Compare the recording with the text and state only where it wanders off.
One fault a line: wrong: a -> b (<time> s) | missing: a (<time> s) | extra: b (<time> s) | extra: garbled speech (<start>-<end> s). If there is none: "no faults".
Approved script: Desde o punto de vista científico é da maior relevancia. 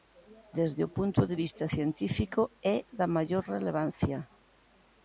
no faults